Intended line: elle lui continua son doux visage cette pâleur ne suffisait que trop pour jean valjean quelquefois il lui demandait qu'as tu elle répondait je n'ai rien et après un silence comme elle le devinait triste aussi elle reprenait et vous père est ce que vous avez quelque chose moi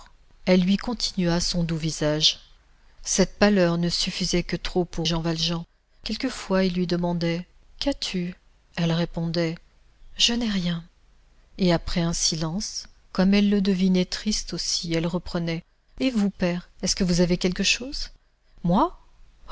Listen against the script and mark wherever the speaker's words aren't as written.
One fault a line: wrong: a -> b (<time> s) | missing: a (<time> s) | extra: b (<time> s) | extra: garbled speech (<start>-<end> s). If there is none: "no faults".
no faults